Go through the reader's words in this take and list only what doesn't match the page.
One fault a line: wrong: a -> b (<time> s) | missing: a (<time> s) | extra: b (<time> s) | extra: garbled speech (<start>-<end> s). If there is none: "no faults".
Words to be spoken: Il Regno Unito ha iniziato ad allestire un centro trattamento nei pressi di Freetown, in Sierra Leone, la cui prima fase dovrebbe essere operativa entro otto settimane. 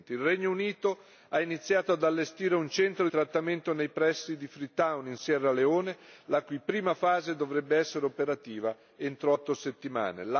no faults